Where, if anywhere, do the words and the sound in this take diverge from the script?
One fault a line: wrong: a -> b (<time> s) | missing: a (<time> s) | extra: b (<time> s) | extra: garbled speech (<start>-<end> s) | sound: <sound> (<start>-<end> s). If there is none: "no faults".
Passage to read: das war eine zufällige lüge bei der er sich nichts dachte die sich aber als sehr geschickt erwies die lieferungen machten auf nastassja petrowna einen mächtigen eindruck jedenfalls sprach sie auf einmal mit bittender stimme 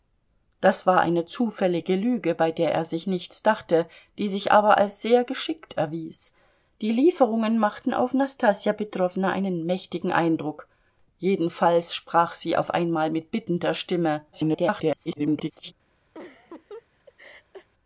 extra: garbled speech (14.3-15.7 s)
sound: laugh (16.1-17.7 s)